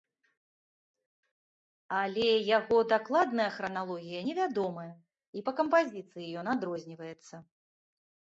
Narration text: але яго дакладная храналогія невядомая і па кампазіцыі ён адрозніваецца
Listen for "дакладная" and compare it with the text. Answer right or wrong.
right